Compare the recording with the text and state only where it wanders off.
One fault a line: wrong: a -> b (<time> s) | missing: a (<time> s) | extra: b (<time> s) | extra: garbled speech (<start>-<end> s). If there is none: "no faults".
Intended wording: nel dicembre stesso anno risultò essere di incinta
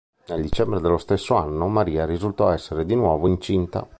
extra: dello (0.8 s)
extra: maria (1.7 s)
extra: nuovo (2.9 s)